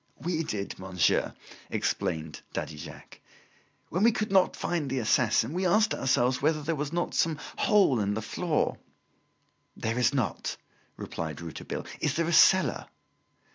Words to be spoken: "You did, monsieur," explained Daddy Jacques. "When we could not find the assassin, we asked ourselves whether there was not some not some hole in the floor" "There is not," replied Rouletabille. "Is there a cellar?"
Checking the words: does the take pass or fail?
fail